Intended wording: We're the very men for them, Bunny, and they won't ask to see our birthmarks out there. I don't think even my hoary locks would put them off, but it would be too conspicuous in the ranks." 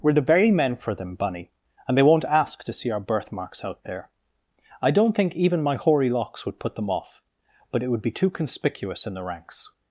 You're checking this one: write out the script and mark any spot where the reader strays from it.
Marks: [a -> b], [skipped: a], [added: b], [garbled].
We're the very men for them, Bunny, and they won't ask to see our birthmarks out there. I don't think even my hoary locks would put them off, but it would be too conspicuous in the ranks."